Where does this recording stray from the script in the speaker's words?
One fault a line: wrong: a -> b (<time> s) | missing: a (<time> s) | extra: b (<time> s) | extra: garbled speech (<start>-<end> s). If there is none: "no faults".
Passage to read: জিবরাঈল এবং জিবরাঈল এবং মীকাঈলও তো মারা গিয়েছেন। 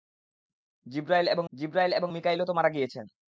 no faults